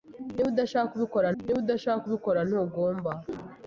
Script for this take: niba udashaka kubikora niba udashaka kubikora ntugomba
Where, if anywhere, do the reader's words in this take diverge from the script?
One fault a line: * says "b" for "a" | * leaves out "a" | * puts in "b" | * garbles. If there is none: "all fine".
all fine